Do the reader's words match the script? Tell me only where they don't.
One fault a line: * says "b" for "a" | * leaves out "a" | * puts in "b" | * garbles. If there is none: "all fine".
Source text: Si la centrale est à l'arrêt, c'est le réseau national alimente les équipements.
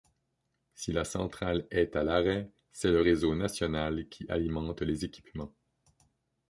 * puts in "qui"